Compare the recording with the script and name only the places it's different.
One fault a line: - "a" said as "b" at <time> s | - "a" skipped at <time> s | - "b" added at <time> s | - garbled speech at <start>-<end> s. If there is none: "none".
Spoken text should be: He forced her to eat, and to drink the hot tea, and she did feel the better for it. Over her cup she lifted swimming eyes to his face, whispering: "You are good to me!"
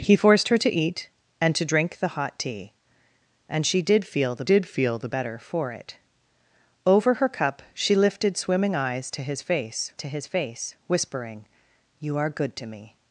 - "did feel the" added at 4.4 s
- "to his face" added at 10.0 s